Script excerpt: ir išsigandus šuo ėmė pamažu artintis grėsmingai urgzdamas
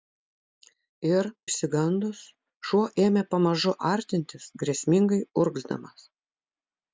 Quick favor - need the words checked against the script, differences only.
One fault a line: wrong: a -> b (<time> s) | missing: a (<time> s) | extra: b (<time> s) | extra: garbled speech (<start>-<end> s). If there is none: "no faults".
no faults